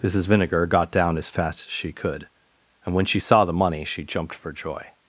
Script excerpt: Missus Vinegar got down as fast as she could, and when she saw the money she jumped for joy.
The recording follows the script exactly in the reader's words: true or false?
true